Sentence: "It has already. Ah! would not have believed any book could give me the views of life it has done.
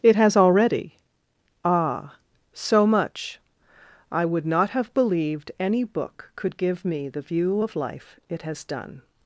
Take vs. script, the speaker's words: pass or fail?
fail